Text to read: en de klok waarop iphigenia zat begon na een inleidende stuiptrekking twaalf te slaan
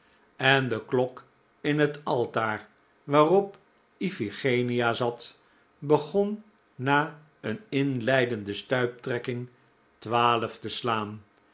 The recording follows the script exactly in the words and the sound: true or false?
false